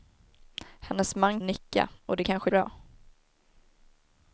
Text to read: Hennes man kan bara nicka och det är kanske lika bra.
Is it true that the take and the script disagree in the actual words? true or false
true